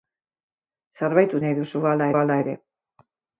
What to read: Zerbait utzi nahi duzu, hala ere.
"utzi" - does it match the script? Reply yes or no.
no